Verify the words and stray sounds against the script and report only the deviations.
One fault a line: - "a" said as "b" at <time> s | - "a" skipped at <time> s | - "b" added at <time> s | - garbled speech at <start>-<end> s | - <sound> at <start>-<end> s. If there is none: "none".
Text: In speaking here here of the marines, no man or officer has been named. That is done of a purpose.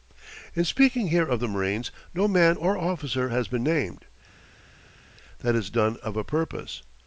- "here" skipped at 1.3 s